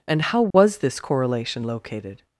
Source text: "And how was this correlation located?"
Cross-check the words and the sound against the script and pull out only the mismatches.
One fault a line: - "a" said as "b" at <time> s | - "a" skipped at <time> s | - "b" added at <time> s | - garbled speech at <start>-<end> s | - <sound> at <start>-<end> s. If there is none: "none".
- dropout at 0.5-0.5 s